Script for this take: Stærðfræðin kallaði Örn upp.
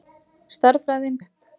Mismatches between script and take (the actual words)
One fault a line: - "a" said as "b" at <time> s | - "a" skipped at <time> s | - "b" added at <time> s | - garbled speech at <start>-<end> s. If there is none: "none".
- "kallaði Örn" skipped at 1.2 s